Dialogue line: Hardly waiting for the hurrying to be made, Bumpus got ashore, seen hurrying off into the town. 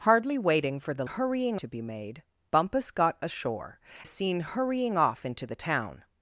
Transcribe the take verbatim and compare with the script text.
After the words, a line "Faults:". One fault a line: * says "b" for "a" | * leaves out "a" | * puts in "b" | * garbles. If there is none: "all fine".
Hardly waiting for the hurrying to be made, Bumpus got ashore, seen hurrying off into the town.
Faults:
all fine